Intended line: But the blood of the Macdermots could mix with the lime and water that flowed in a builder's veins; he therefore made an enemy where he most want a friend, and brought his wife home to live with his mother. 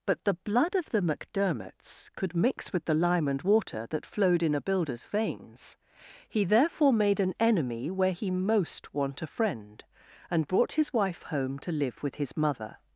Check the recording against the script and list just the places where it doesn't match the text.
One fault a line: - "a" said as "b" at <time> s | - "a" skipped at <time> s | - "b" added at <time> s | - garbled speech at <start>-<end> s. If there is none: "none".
none